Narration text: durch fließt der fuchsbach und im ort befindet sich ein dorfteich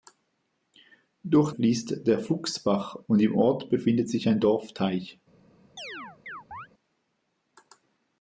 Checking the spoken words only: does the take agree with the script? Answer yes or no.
yes